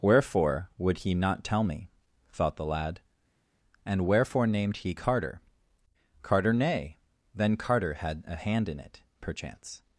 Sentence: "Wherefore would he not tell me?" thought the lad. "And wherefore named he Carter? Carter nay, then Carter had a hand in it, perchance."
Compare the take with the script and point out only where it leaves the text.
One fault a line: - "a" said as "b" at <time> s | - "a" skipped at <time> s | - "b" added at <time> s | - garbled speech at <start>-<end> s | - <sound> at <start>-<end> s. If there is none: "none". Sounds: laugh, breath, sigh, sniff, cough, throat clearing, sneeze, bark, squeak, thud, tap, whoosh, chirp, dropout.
none